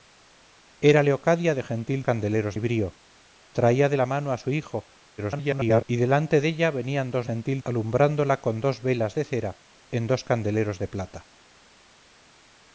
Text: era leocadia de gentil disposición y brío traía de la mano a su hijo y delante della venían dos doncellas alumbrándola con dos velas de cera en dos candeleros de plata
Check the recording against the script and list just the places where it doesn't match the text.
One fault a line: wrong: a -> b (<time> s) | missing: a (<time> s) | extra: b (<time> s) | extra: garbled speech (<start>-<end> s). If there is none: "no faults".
wrong: disposición -> candeleros (2.1 s)
extra: garbled speech (5.2-5.8 s)
wrong: doncellas -> gentil (7.3 s)